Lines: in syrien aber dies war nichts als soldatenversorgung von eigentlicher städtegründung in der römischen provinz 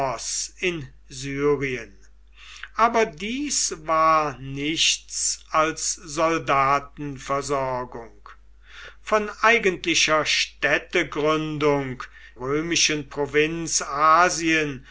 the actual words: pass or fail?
fail